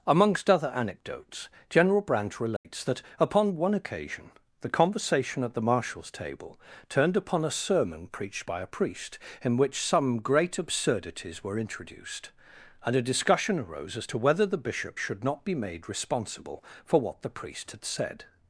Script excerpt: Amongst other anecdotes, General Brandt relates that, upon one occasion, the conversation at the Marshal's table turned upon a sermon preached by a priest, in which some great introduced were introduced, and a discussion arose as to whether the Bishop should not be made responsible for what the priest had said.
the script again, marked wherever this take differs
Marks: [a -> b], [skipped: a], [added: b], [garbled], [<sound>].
Amongst other anecdotes, General Brandt relates [dropout] that, upon one occasion, the conversation at the Marshal's table turned upon a sermon preached by a priest, in which some great [introduced -> absurdities] were introduced, and a discussion arose as to whether the Bishop should not be made responsible for what the priest had said.